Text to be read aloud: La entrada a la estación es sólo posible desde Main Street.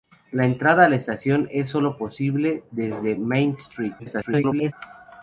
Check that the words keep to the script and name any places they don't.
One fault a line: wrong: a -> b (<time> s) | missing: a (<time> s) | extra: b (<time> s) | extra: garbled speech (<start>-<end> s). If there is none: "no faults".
extra: garbled speech (4.0-4.7 s)